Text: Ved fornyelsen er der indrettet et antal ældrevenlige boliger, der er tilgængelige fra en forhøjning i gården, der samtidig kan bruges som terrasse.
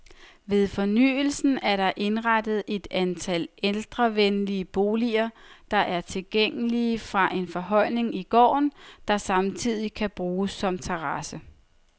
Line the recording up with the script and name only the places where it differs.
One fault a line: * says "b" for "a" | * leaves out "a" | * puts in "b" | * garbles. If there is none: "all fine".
all fine